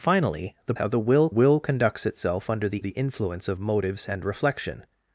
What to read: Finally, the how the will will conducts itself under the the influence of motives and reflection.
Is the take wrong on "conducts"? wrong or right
right